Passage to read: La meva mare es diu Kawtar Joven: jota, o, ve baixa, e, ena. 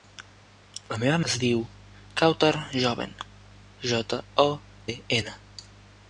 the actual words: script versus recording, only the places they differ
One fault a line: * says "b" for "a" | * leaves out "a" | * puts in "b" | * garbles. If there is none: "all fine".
* leaves out "mare"
* leaves out "ve baixa"